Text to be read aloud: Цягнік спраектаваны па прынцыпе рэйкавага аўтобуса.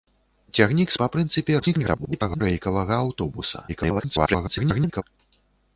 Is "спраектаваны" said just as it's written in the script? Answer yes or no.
no